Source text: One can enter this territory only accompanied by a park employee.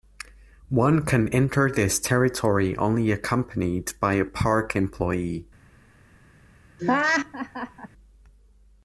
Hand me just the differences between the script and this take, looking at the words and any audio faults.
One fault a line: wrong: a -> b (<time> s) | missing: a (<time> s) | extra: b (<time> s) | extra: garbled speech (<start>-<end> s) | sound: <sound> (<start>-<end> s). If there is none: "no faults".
sound: laugh (6.8-7.9 s)